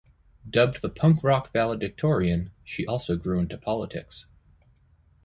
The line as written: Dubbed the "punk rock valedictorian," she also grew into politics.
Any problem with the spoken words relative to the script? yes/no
no